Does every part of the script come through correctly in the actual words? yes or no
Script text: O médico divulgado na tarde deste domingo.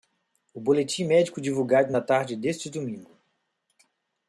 no